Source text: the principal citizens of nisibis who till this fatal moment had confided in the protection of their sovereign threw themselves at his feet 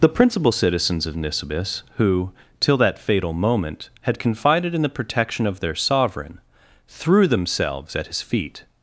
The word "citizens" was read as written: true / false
true